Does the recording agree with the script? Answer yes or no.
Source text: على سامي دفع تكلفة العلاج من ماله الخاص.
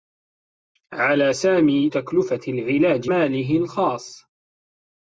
no